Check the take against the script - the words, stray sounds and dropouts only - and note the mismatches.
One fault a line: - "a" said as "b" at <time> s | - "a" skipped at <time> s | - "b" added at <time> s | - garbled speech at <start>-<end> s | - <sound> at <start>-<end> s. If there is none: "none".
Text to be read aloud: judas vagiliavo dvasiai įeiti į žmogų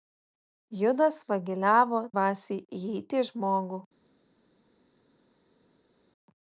none